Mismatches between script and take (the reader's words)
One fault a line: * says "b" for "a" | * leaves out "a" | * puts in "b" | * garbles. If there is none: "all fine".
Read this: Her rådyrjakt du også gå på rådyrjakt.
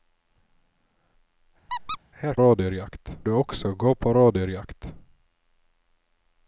all fine